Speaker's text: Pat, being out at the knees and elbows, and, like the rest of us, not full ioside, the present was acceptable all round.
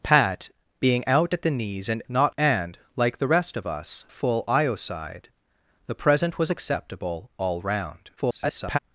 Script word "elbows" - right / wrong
wrong